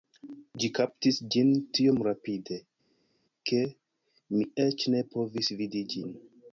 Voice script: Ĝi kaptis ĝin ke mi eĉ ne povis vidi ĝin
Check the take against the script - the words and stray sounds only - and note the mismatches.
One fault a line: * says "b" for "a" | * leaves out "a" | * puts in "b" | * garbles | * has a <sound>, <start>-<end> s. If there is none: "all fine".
* puts in "tiom rapide"